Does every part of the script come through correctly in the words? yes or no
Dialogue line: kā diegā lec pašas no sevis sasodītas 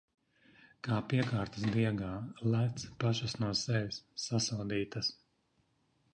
no